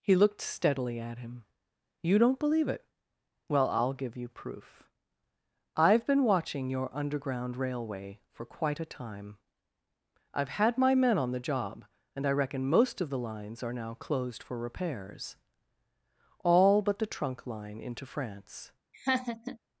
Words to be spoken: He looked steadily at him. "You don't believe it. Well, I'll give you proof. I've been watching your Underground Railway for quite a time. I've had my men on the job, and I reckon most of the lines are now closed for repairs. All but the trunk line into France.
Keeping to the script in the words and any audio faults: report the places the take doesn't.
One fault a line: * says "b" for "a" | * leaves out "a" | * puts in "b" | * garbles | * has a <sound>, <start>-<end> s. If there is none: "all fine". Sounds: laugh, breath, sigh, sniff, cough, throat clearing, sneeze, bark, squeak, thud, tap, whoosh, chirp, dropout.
* has a laugh, 18.9-19.6 s